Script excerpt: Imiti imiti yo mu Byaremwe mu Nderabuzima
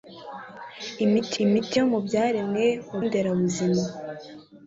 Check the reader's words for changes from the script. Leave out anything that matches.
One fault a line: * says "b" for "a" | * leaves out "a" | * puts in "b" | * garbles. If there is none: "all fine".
all fine